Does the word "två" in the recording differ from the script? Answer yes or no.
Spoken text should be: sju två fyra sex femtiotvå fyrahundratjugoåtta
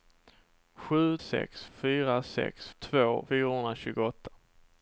yes